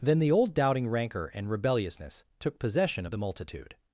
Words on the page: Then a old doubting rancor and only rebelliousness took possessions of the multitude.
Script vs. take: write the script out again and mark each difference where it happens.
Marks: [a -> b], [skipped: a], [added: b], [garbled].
Then [a -> the] old doubting rancor and [skipped: only] rebelliousness took [possessions -> possession] of the multitude.